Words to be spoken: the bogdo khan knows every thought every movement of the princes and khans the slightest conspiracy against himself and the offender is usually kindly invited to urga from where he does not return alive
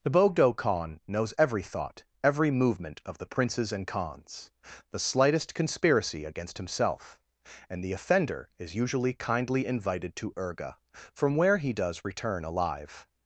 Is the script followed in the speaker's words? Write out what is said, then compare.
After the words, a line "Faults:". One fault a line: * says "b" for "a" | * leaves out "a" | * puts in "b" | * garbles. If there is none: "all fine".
the bogdo khan knows every thought every movement of the princes and khans the slightest conspiracy against himself and the offender is usually kindly invited to urga from where he does return alive
Faults:
* leaves out "not"